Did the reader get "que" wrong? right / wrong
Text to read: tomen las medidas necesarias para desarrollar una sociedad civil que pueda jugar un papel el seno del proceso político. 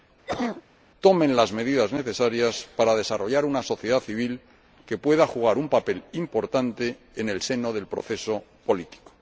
right